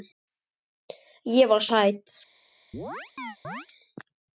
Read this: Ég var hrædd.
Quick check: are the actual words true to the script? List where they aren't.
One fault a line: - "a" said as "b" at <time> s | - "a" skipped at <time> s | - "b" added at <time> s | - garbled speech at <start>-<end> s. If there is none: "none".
none